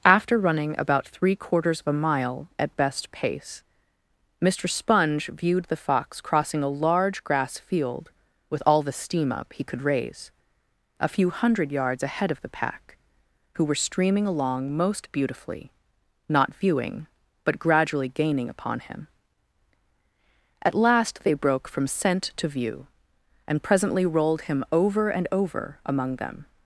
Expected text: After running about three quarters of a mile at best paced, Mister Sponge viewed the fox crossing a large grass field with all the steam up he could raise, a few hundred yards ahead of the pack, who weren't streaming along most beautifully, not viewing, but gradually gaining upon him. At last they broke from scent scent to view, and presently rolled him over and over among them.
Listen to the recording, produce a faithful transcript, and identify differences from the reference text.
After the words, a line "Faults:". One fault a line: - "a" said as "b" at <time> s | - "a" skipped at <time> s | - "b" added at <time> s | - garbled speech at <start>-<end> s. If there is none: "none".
After running about three quarters of a mile at best pace, Mister Sponge viewed the fox crossing a large grass field with all the steam up he could raise, a few hundred yards ahead of the pack, who were streaming along most beautifully, not viewing, but gradually gaining upon him. At last they broke from scent to view, and presently rolled him over and over among them.
Faults:
- "paced" said as "pace" at 3.1 s
- "weren't" said as "were" at 13.7 s
- "scent" skipped at 22.3 s